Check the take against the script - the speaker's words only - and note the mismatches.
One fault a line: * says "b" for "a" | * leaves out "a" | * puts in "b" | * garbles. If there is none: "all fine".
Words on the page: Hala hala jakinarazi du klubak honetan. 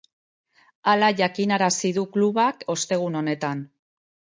* leaves out "hala"
* puts in "ostegun"